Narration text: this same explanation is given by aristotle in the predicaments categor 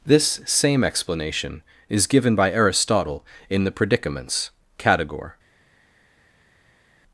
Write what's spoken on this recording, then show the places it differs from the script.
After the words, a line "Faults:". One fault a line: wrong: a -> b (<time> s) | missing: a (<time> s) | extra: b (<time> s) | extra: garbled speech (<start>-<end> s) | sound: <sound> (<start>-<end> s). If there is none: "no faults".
this same explanation is given by aristotle in the predicaments categor
Faults:
no faults